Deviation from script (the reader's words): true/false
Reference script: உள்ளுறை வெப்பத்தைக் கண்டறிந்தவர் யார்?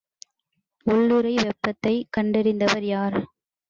false